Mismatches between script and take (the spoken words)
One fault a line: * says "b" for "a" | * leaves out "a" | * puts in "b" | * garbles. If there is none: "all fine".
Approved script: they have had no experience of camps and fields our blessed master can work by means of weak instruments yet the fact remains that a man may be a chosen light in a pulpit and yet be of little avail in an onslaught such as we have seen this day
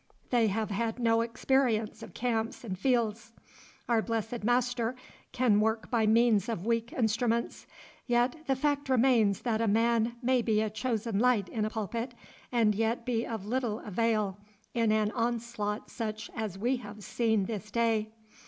all fine